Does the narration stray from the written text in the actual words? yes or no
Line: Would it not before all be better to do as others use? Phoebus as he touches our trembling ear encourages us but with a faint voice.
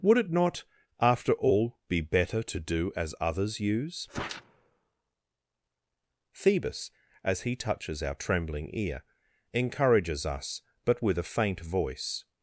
yes